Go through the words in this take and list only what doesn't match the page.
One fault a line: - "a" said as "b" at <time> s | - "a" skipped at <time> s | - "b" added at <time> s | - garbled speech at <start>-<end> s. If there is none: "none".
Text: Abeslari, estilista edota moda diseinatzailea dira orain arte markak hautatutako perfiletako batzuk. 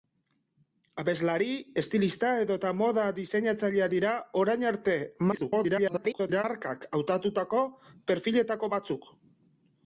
- garbled speech at 5.3-6.4 s